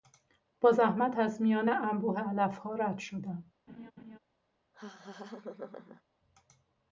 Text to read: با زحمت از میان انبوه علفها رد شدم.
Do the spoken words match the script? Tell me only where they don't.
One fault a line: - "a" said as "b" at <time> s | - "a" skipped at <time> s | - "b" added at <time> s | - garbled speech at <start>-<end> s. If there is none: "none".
none